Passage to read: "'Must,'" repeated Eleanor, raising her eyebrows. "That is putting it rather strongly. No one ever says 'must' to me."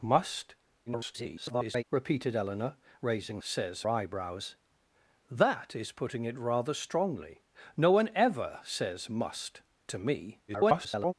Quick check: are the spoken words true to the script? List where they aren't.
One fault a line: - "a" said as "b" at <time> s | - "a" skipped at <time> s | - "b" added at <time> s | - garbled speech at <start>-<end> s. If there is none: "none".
- garbled speech at 0.9-1.8 s
- "her" said as "says" at 3.4 s
- garbled speech at 10.5-11.1 s